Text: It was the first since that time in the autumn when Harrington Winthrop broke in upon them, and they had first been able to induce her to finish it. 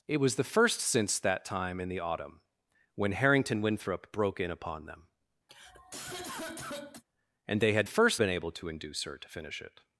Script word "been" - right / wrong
right